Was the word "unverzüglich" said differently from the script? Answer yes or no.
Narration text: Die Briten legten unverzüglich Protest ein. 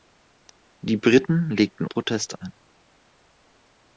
yes